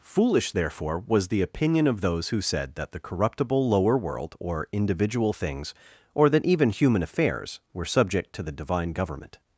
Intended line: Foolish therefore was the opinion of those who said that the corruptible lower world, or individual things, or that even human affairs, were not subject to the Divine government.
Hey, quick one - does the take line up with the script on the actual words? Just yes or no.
no